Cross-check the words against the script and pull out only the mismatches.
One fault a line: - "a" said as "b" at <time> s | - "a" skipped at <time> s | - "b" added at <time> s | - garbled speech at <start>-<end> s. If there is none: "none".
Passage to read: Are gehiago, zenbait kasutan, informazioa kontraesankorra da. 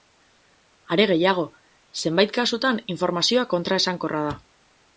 none